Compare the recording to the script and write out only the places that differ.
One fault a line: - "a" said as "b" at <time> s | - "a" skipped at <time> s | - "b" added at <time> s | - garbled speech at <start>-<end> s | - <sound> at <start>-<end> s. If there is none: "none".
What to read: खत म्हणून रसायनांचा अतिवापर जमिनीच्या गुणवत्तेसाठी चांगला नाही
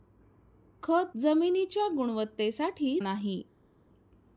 - "म्हणून रसायनांचा अतिवापर" skipped at 1.1 s
- "चांगला" skipped at 3.0 s